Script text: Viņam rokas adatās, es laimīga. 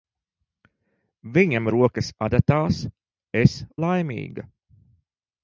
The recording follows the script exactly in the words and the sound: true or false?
true